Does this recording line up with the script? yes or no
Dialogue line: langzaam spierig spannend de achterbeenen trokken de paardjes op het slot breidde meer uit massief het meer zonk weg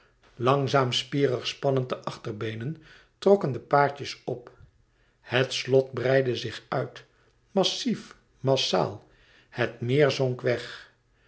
no